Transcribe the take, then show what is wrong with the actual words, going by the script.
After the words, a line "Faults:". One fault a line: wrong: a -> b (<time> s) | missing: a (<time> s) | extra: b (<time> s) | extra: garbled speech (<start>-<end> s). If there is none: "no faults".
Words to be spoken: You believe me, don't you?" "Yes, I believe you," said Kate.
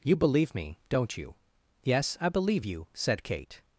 You believe me, don't you?" "Yes, I believe you," said Kate.
Faults:
no faults